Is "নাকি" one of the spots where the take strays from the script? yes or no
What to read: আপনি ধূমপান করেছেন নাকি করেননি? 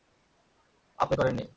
yes